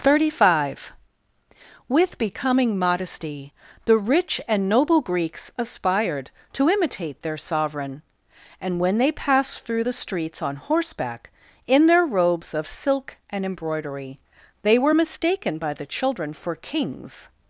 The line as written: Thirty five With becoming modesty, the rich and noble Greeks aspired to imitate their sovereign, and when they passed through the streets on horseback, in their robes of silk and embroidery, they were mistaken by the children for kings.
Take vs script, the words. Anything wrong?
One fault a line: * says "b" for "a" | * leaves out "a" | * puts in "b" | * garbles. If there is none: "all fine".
all fine